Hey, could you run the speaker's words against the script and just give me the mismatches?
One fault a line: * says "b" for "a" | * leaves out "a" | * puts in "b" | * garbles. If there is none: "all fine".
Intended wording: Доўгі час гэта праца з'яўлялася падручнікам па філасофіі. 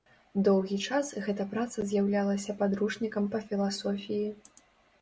all fine